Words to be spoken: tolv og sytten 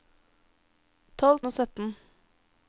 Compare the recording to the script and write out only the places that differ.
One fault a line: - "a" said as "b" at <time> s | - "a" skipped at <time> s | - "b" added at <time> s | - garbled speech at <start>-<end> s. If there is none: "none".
none